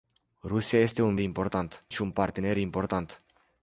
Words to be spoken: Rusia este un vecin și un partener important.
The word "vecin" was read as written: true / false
false